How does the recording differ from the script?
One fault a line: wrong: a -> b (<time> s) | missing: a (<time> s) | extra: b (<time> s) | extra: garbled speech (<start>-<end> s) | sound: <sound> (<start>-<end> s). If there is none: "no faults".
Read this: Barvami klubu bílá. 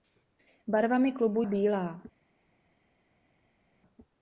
no faults